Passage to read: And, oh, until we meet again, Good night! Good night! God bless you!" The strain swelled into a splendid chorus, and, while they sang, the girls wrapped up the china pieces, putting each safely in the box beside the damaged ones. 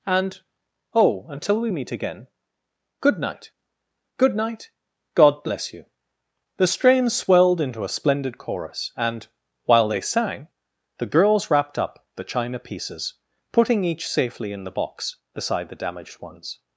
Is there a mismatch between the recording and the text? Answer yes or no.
no